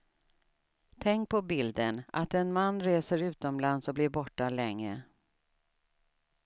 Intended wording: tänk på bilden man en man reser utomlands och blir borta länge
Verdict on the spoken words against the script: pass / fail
fail